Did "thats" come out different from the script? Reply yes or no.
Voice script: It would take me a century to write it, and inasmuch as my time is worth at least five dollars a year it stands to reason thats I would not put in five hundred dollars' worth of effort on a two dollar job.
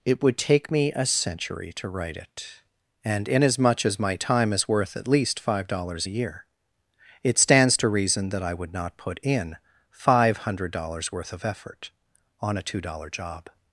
yes